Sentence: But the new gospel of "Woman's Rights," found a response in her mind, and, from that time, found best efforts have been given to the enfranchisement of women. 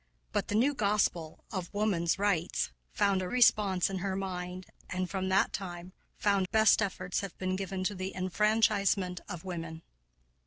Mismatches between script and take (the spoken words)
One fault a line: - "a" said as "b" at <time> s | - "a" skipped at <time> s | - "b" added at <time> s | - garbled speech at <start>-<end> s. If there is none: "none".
none